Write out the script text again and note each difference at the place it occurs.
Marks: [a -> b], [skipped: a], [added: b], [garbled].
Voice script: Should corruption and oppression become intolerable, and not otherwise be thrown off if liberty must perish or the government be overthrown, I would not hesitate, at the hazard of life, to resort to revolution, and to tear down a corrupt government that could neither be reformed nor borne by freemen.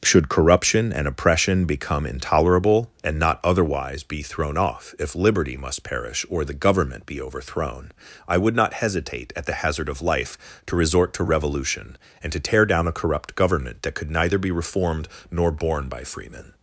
Should corruption and oppression become intolerable, and not otherwise be thrown off if liberty must perish or the government be overthrown, I would not hesitate, at the hazard of life, to resort to revolution, and to tear down a corrupt government that could neither be reformed nor borne by freemen.